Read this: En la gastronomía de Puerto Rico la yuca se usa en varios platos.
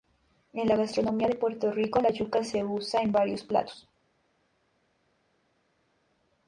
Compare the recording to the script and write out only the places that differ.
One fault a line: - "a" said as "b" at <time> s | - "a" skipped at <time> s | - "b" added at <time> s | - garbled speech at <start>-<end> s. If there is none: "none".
none